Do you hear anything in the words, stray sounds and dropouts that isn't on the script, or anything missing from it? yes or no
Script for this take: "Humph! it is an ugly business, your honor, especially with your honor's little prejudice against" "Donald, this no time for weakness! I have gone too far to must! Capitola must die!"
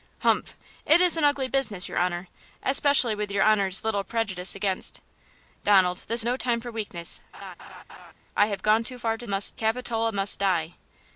yes